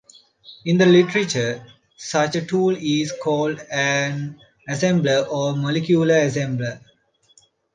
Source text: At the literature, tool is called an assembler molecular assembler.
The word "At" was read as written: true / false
false